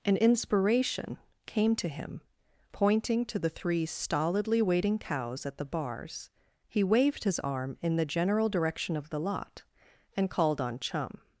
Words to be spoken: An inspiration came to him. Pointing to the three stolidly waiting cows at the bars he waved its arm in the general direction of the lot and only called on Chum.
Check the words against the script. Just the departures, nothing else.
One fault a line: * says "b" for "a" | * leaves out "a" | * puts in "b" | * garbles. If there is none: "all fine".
* says "his" for "its"
* leaves out "only"